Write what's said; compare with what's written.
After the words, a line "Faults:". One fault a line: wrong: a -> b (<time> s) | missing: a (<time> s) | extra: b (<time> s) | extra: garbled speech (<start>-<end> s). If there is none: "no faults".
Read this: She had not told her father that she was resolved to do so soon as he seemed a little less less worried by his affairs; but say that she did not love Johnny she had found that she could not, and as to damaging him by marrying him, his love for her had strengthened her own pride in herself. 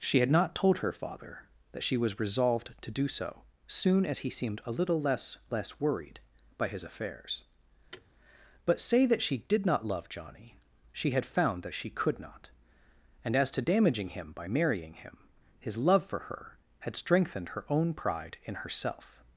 She had not told her father that she was resolved to do so soon as he seemed a little less less worried by his affairs; but say that she did not love Johnny she had found that she could not, and as to damaging him by marrying him, his love for her had strengthened her own pride in herself.
Faults:
no faults